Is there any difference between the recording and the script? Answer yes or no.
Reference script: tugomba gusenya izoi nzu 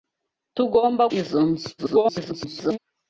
yes